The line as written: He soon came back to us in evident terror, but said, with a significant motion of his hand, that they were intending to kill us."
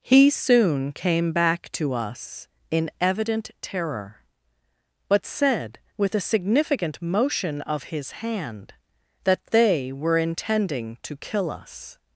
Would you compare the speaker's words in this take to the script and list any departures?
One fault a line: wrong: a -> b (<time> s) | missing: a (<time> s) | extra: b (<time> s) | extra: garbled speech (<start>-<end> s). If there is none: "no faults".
no faults